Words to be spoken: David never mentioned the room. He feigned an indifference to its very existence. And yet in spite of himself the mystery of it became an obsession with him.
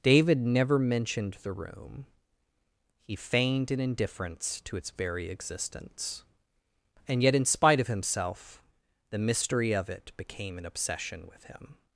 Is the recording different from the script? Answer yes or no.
no